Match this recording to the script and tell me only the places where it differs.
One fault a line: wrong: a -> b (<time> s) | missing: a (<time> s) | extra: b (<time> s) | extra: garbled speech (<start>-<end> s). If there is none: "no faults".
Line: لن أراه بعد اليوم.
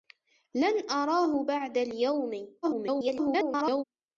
extra: garbled speech (2.6-3.8 s)